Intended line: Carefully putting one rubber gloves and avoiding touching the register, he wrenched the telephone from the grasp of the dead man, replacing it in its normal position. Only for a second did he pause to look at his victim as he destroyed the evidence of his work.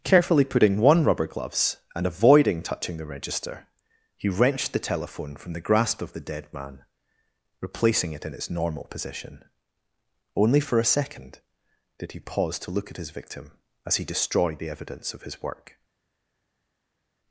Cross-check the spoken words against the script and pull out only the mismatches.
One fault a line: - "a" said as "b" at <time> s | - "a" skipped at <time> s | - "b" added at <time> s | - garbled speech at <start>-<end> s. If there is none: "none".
none